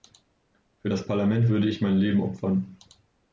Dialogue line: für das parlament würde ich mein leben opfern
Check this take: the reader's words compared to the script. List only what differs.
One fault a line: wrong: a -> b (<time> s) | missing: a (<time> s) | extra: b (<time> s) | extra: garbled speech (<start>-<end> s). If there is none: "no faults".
no faults